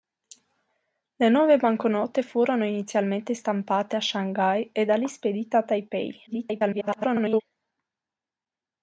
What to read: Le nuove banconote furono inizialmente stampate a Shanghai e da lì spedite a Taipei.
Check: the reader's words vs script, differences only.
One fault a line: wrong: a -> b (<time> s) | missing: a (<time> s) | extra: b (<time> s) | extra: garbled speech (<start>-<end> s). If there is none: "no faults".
extra: garbled speech (6.3-7.4 s)